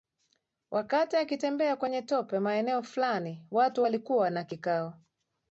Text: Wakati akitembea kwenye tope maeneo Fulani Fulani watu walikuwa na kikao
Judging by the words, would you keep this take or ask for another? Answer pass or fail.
fail